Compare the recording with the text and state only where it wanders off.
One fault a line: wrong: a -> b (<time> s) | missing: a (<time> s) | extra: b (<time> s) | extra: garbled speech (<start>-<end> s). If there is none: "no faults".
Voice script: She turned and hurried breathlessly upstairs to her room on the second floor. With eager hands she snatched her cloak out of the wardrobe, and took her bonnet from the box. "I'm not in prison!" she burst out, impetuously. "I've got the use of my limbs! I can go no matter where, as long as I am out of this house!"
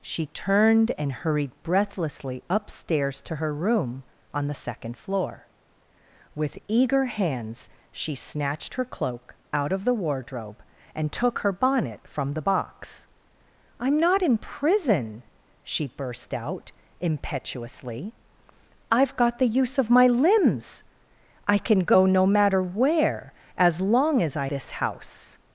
missing: am out of (24.5 s)